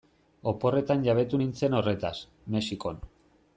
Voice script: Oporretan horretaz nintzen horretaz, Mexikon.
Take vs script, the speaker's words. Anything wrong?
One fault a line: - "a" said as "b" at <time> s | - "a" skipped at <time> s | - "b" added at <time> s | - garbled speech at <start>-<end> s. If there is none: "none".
- "horretaz" said as "jabetu" at 1.1 s